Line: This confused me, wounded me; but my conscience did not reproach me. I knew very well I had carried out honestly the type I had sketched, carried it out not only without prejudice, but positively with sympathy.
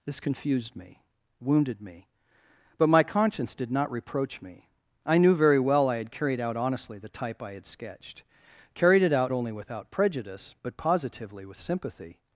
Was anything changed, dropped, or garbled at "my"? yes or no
no